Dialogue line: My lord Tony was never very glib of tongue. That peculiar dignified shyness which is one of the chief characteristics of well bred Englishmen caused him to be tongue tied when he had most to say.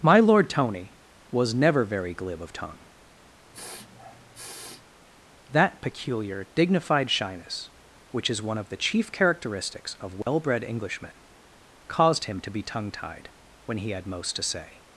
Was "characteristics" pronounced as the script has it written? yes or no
yes